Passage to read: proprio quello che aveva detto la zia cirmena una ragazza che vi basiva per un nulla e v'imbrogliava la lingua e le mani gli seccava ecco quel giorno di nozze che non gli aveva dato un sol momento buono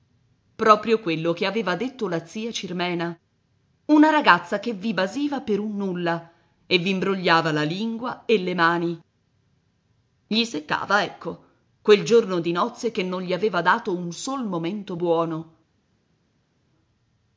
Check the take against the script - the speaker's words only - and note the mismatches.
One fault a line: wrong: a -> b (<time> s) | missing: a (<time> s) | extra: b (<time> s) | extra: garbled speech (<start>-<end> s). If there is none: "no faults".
no faults